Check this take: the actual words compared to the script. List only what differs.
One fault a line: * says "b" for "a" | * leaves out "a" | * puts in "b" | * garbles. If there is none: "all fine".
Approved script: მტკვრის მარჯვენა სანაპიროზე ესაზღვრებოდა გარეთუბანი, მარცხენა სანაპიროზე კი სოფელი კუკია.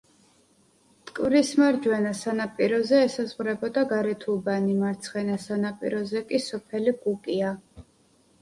all fine